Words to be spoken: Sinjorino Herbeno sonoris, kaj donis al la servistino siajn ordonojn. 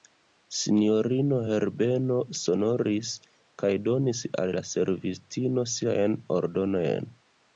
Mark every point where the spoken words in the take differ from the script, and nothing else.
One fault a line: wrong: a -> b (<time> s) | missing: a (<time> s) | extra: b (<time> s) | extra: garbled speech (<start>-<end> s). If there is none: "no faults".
no faults